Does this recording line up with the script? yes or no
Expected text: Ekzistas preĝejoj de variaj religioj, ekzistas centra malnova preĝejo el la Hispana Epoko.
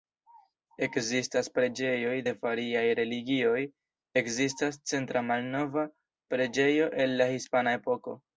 yes